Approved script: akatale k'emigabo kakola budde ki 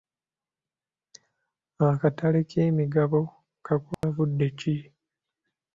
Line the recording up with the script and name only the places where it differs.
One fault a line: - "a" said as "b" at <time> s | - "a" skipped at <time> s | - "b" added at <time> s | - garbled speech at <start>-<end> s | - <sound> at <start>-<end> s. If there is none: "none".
- dropout at 3.9-4.0 s